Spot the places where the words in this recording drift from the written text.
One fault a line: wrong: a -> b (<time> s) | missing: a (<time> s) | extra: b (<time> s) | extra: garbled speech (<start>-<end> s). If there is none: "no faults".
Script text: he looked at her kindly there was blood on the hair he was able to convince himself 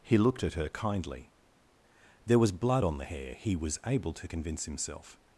no faults